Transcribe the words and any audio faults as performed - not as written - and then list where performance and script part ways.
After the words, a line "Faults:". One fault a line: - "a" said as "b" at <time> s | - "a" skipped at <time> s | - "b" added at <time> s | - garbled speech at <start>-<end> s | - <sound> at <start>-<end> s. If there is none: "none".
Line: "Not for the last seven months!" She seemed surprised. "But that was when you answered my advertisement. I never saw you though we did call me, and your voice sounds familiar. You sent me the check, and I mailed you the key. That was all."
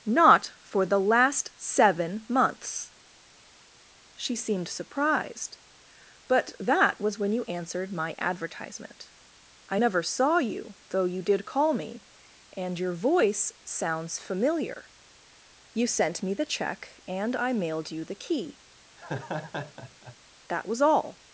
"Not for the last seven months!" She seemed surprised. "But that was when you answered my advertisement. I never saw you though you did call me, and your voice sounds familiar. You sent me the check, and I mailed you the key. That was all."
Faults:
- "we" said as "you" at 11.0 s
- laugh at 19.0-20.2 s